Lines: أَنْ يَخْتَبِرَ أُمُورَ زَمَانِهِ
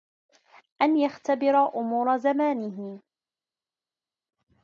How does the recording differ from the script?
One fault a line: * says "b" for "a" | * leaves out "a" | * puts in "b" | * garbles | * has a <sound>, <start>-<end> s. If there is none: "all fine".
all fine